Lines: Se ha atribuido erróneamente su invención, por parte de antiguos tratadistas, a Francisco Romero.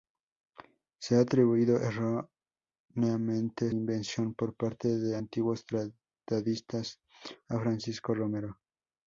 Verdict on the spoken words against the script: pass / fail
fail